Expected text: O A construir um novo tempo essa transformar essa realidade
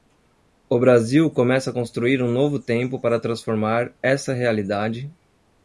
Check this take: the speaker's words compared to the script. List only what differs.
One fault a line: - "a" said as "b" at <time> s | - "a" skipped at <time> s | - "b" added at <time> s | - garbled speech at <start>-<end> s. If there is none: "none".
- "Brasil começa" added at 0.8 s
- "essa" said as "para" at 3.0 s